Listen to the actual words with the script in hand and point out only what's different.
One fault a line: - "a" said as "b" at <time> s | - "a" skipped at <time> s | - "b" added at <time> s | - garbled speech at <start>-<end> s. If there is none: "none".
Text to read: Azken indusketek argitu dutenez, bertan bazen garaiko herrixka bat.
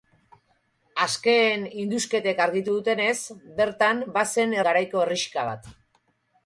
none